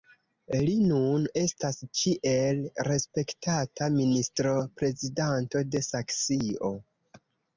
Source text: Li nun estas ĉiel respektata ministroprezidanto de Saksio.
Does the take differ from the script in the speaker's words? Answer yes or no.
no